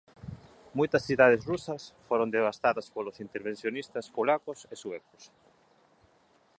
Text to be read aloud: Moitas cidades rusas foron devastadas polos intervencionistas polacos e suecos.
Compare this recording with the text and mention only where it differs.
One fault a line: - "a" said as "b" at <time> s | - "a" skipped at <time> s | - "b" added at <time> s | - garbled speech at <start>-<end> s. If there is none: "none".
none